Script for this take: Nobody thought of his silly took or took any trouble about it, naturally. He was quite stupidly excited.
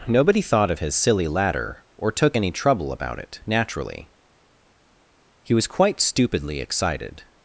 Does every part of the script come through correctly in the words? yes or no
no